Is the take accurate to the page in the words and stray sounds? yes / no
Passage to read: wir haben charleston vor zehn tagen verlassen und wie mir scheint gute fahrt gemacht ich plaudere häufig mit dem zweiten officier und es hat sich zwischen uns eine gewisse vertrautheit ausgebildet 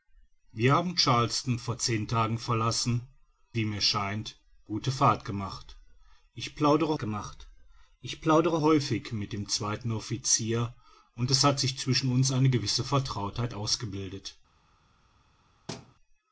no